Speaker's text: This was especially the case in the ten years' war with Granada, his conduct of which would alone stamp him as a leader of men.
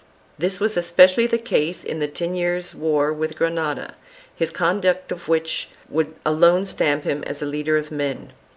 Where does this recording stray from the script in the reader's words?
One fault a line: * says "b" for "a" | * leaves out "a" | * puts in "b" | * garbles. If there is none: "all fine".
all fine